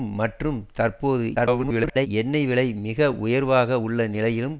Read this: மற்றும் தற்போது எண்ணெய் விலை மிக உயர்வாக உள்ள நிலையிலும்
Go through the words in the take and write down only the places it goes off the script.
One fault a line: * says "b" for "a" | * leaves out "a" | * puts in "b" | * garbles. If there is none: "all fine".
* garbles